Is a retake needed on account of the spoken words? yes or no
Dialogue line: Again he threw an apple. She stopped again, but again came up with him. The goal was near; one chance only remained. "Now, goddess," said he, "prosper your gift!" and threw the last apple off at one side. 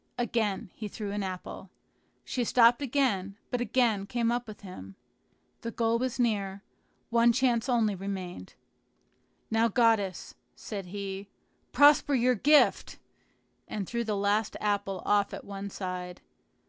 no